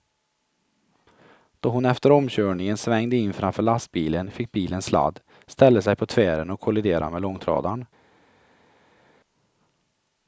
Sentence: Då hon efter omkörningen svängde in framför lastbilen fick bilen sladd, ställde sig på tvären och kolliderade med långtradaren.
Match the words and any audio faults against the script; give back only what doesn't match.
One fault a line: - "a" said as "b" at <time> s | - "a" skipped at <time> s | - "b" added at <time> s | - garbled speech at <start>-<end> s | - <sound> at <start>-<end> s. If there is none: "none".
none